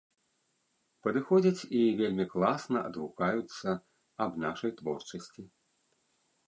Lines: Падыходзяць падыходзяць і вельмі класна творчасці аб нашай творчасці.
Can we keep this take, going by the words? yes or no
no